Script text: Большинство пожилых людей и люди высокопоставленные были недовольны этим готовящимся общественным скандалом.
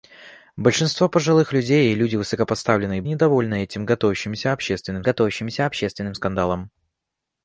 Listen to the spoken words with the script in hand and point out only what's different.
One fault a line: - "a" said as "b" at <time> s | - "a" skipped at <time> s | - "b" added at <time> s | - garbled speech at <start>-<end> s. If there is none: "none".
- "были" skipped at 3.0 s
- "готовящимся общественным" added at 5.0 s